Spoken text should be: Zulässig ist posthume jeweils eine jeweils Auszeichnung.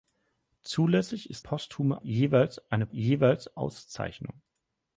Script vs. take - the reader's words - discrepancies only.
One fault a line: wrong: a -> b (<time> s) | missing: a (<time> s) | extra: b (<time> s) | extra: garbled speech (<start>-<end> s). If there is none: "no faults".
no faults